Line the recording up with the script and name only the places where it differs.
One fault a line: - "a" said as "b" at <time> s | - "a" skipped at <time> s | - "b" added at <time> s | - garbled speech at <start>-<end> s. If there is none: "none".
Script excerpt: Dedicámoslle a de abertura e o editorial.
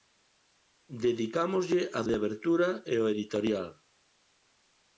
none